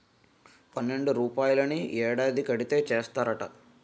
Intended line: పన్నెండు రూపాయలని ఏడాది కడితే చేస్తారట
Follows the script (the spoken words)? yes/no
yes